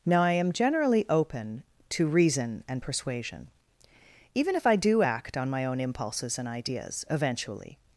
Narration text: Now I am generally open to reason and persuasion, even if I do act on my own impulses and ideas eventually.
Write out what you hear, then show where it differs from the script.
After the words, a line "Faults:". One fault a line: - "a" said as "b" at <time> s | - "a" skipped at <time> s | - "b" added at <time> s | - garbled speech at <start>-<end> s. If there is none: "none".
Now I am generally open to reason and persuasion, even if I do act on my own impulses and ideas eventually.
Faults:
none